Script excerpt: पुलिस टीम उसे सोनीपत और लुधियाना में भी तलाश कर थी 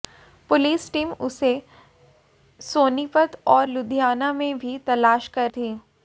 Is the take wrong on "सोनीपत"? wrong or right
right